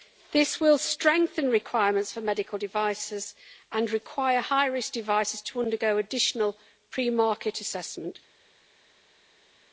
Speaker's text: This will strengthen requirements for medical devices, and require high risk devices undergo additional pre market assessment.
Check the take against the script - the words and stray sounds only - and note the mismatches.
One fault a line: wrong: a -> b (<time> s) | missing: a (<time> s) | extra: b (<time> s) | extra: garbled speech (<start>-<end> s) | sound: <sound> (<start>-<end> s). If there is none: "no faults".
extra: to (5.4 s)